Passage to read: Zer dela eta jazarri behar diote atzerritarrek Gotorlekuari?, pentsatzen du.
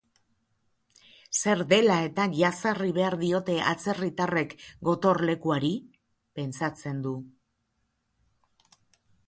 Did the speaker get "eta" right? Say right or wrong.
right